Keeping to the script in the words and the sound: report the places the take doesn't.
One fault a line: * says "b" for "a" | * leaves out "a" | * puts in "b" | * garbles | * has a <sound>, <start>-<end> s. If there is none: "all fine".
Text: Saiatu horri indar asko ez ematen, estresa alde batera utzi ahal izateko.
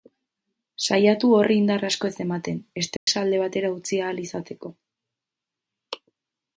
* has a dropout, 3.0-3.1 s